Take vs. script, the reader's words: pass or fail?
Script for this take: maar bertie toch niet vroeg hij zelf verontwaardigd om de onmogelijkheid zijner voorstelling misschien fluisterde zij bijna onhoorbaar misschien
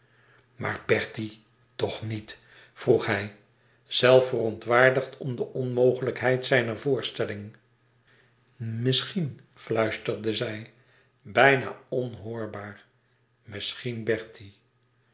pass